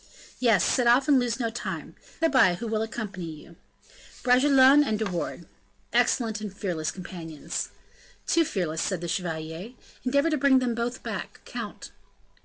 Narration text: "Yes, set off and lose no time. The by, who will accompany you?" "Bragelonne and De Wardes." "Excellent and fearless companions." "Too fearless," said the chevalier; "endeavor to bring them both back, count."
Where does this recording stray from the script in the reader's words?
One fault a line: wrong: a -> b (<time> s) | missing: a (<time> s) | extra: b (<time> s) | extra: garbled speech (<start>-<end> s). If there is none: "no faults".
no faults